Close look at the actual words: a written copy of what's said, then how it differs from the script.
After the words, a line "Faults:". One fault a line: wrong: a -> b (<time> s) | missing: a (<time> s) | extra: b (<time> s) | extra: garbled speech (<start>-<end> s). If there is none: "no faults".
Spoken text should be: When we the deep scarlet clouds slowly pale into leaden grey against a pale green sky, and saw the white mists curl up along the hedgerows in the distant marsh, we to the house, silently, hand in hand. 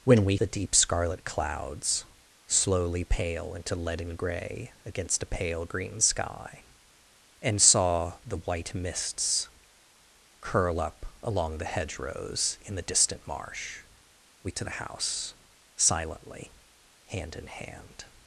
When we the deep scarlet clouds slowly pale into leaden grey against a pale green sky, and saw the white mists curl up along the hedgerows in the distant marsh, we to the house, silently, hand in hand.
Faults:
no faults